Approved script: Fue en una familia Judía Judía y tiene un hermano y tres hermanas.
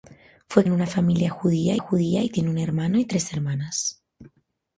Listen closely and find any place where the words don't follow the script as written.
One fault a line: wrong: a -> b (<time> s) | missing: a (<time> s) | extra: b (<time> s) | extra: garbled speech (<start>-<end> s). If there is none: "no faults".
no faults